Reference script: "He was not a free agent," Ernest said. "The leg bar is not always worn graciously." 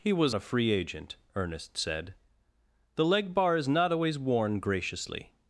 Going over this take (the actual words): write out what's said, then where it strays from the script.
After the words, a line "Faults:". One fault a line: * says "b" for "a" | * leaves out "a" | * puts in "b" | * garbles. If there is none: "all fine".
"He was a free agent," Ernest said. "The leg bar is not always worn graciously."
Faults:
* leaves out "not"